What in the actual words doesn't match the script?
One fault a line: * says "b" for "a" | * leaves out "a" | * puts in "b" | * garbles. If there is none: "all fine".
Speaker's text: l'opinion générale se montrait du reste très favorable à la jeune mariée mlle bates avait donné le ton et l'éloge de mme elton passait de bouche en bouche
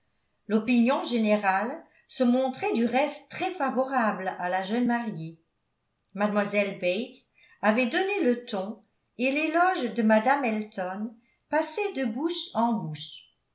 all fine